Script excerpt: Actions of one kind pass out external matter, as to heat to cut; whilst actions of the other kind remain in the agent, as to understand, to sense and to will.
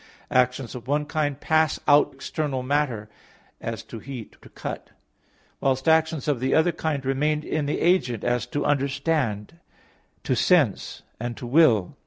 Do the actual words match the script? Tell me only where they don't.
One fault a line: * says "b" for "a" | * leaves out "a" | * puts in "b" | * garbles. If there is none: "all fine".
all fine